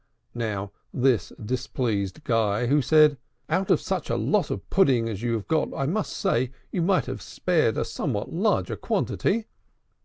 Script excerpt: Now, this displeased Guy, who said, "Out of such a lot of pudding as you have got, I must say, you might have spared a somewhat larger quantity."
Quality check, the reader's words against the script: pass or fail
pass